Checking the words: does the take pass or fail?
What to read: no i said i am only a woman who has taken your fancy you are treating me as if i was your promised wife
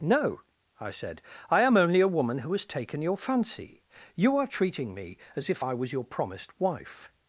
pass